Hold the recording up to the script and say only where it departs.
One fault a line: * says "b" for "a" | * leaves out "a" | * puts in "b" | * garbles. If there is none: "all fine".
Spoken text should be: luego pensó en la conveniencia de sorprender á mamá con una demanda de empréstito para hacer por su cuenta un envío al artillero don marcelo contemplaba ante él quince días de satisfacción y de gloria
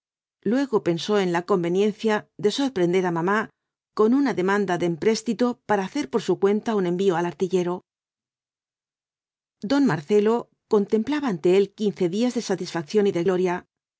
all fine